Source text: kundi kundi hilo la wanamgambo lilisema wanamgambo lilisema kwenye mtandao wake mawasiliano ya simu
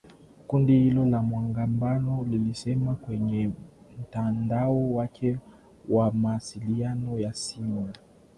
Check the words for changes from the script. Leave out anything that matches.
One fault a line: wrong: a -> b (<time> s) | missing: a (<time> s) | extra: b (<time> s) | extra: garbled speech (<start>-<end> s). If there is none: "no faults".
missing: kundi (0.8 s)
missing: wanamgambo lilisema (3.0 s)
extra: wa (5.9 s)